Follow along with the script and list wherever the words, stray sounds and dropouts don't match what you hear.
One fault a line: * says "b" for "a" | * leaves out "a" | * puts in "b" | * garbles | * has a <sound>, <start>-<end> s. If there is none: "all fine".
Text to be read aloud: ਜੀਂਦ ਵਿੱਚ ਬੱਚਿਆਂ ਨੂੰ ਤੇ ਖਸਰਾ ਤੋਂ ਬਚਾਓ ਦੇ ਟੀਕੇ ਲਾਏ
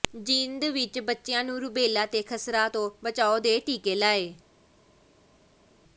* puts in "ਰੁਬੈਲਾ"